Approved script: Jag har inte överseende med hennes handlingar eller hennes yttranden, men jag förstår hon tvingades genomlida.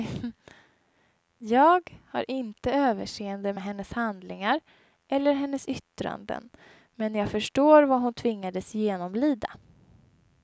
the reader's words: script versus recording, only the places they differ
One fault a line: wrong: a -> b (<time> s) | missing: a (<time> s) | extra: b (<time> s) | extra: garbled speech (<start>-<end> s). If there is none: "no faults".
extra: vad (7.8 s)